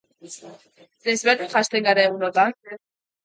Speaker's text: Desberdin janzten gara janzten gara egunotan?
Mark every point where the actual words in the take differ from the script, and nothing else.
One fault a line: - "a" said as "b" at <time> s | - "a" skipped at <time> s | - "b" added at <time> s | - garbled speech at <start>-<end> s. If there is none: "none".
- "janzten gara" skipped at 2.1 s